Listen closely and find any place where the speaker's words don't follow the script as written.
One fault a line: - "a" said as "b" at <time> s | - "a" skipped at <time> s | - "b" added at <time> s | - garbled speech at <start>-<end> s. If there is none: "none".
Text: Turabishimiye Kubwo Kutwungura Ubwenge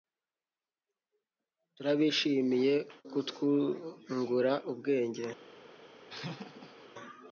- "Kubwo" skipped at 2.8 s